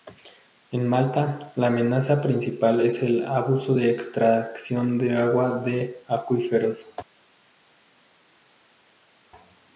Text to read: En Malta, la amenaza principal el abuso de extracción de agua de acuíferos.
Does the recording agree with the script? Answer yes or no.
no